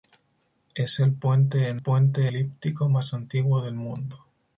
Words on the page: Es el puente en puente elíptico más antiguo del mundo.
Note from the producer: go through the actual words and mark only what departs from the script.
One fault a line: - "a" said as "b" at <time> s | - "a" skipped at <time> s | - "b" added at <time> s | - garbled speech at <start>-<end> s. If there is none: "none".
none